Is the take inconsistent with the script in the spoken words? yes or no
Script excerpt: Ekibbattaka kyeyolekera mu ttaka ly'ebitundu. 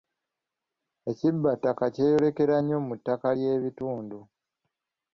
yes